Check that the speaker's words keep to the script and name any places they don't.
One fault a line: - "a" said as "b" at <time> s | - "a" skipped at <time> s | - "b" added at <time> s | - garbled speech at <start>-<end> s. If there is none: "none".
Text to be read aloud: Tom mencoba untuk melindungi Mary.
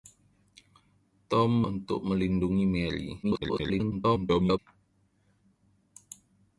- "mencoba" skipped at 1.6 s
- garbled speech at 3.2-4.6 s